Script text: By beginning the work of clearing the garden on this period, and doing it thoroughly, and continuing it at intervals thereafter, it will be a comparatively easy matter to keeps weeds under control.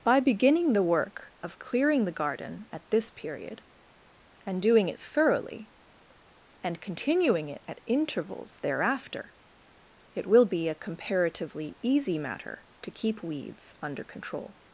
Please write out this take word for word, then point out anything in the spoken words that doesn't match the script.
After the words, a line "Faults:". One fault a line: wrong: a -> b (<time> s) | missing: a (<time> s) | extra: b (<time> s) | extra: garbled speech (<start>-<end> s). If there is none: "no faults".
By beginning the work of clearing the garden at this period, and doing it thoroughly, and continuing it at intervals thereafter, it will be a comparatively easy matter to keep weeds under control.
Faults:
wrong: on -> at (2.7 s)
wrong: keeps -> keep (12.9 s)